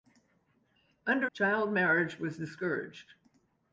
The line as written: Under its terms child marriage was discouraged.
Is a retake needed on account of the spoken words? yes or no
yes